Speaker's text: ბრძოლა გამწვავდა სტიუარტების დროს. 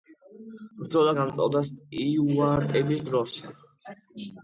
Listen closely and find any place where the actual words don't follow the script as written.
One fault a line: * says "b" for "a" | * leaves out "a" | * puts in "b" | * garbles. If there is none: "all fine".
all fine